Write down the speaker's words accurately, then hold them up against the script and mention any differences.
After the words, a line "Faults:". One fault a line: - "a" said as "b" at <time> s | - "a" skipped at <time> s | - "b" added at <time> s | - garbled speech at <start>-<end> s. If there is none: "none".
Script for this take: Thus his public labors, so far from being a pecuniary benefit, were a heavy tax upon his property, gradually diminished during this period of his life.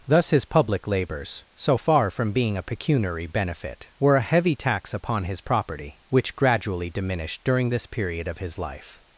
Thus his public labors, so far from being a pecuniary benefit, were a heavy tax upon his property, which gradually diminished during this period of his life.
Faults:
- "which" added at 6.1 s